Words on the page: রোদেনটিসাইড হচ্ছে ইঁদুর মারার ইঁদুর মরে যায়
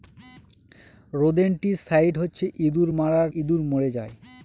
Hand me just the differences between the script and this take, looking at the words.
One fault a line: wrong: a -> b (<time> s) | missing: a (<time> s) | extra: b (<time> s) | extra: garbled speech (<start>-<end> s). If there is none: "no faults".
no faults